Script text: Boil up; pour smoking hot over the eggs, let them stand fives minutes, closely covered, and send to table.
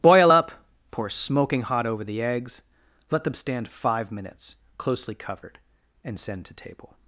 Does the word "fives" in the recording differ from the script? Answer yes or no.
yes